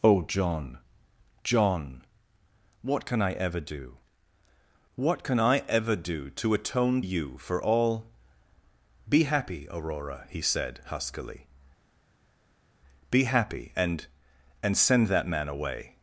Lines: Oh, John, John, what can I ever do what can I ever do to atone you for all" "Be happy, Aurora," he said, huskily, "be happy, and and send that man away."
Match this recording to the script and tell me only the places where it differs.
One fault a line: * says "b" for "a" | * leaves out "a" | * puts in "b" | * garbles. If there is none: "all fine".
all fine